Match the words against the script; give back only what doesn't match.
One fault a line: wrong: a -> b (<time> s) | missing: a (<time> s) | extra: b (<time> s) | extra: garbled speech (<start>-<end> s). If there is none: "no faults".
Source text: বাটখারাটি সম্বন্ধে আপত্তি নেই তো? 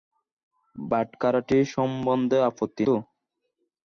missing: নেই (2.8 s)